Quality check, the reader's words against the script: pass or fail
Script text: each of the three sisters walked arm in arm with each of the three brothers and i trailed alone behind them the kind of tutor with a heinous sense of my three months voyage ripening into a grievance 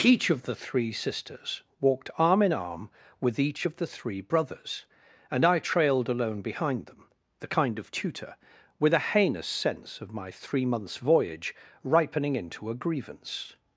pass